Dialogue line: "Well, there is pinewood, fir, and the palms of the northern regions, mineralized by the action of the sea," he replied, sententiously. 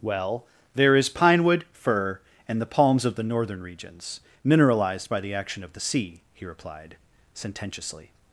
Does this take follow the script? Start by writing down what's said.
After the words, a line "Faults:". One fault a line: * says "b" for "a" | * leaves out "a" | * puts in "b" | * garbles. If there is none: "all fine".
"Well, there is pinewood, fir, and the palms of the northern regions, mineralized by the action of the sea," he replied, sententiously.
Faults:
all fine